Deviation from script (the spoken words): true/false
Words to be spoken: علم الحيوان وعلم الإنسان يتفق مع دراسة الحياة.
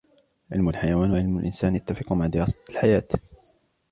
false